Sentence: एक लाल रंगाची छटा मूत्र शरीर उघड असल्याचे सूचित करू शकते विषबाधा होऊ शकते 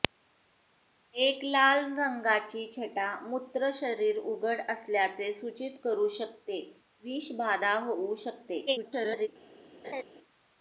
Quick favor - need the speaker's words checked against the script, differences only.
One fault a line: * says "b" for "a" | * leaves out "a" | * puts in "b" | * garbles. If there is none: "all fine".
* garbles